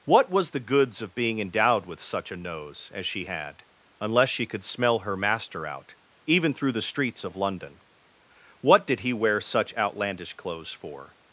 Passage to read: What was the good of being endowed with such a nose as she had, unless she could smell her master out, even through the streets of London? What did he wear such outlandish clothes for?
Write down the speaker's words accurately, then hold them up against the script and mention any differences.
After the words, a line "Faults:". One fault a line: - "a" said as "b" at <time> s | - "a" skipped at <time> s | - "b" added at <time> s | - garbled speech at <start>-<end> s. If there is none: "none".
What was the goods of being endowed with such a nose as she had, unless she could smell her master out, even through the streets of London? What did he wear such outlandish clothes for?
Faults:
- "good" said as "goods" at 0.6 s